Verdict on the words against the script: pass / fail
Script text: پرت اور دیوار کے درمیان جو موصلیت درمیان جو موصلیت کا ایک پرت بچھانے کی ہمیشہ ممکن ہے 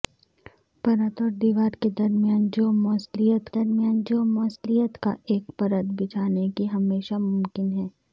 pass